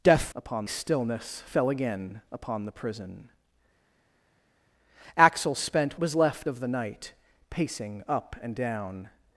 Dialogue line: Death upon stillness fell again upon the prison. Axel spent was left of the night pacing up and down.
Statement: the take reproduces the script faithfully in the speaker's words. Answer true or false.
true